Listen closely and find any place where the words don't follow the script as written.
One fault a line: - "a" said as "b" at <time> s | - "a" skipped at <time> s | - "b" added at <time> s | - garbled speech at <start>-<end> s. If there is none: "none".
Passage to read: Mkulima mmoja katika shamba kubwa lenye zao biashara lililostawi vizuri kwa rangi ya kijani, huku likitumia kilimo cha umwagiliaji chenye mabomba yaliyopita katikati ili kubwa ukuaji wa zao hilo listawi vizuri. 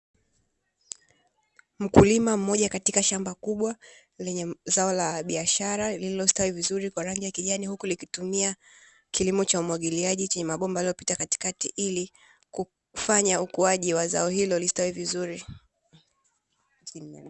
- "la" added at 4.9 s
- "kubwa" said as "kufanya" at 12.5 s